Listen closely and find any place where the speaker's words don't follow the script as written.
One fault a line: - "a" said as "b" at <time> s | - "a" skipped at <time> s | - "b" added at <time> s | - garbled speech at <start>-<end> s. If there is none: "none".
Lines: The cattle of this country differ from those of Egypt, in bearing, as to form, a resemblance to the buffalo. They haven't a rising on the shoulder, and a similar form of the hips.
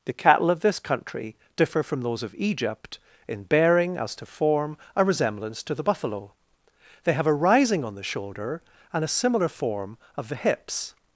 - "haven't" said as "have" at 7.1 s